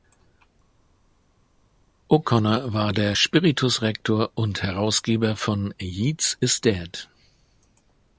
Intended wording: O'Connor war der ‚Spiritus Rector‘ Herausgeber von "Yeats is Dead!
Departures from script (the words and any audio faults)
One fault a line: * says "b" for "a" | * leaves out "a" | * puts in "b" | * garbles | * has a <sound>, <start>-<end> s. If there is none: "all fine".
* puts in "und"